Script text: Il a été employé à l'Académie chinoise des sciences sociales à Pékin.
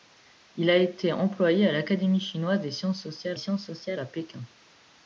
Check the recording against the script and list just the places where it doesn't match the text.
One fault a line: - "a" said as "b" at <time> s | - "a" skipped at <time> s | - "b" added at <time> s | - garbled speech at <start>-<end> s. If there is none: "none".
- "sciences sociales" added at 3.4 s